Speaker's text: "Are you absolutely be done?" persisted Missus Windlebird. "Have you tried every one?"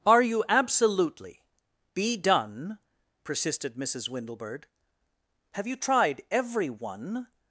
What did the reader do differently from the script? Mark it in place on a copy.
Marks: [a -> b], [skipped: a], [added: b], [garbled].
"Are you absolutely be done?" persisted Missus Windlebird. "Have you tried every one?"